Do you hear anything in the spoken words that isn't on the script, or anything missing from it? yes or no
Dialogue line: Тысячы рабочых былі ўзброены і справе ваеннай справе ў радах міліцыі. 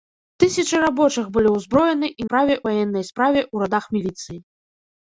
no